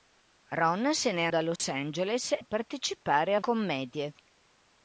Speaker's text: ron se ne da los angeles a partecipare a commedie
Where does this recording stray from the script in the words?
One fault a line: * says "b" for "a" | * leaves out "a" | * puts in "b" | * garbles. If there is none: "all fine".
all fine